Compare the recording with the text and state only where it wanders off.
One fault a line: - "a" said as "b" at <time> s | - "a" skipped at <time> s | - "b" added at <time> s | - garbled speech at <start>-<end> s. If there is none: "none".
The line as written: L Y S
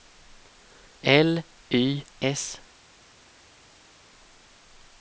none